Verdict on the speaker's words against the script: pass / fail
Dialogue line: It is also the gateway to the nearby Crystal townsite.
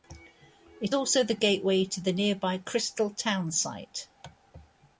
fail